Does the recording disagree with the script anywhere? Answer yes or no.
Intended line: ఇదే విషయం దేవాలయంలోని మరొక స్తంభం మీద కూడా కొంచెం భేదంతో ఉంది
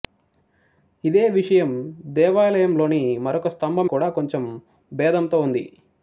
yes